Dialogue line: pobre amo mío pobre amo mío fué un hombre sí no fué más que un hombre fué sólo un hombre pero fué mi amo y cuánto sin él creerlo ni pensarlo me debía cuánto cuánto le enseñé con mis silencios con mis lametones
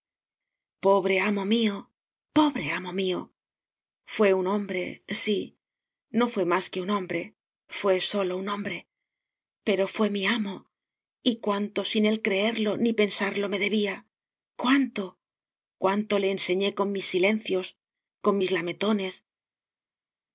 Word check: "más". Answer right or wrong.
right